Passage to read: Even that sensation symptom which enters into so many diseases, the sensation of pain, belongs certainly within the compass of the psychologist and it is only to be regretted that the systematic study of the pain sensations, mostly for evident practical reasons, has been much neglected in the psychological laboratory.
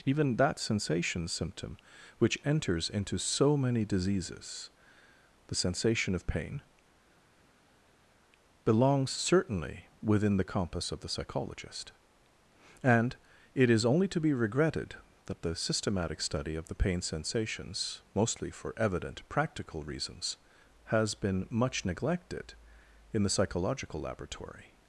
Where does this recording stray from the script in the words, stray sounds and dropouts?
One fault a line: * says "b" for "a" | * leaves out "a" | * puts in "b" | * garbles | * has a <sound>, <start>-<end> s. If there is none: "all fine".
all fine